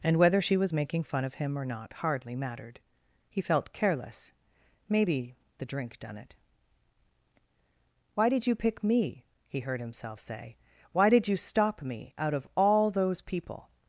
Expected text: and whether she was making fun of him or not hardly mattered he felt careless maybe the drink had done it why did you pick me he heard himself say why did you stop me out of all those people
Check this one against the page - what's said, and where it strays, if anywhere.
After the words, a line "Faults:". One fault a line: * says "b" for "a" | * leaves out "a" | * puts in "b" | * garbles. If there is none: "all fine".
and whether she was making fun of him or not hardly mattered he felt careless maybe the drink done it why did you pick me he heard himself say why did you stop me out of all those people
Faults:
* leaves out "had"